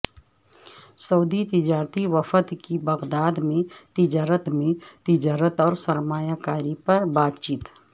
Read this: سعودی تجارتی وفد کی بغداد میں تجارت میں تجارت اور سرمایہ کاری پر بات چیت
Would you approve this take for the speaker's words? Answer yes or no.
yes